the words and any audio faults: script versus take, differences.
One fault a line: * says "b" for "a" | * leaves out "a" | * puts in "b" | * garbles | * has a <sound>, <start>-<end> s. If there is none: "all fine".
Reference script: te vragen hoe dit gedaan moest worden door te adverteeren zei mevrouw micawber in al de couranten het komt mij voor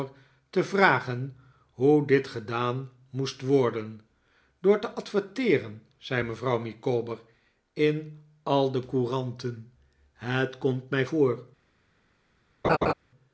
* has a laugh, 12.6-12.9 s